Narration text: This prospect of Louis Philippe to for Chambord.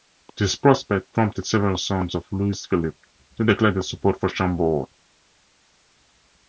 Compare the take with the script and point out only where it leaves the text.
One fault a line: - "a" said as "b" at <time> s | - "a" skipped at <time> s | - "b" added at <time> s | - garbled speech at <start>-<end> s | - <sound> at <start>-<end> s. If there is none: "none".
- "prompted several sons" added at 1.1 s
- "declare their support" added at 3.5 s